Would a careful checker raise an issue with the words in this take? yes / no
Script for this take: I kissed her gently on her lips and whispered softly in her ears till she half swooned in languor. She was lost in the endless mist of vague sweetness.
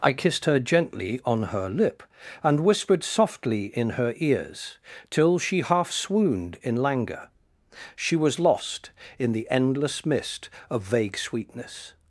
yes